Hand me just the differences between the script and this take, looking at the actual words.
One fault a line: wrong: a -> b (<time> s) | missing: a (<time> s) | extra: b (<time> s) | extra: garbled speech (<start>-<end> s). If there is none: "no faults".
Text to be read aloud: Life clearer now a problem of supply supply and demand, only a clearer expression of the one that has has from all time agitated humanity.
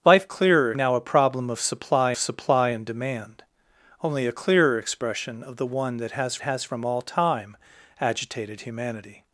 no faults